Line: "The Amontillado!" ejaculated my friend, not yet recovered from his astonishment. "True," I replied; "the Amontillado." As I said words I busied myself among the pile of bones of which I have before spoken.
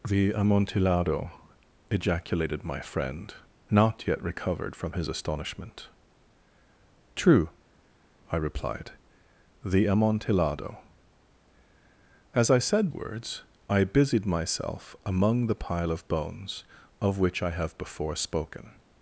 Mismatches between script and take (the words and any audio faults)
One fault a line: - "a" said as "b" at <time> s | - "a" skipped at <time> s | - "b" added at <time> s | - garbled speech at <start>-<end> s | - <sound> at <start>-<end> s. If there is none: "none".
none